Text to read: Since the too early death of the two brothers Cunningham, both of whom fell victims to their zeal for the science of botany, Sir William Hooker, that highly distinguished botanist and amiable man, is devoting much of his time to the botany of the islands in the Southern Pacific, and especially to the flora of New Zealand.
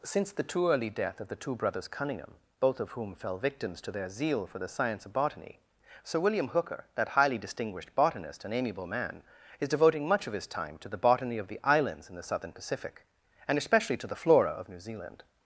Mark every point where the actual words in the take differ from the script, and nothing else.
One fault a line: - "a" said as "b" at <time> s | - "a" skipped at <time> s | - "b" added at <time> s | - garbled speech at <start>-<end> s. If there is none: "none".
none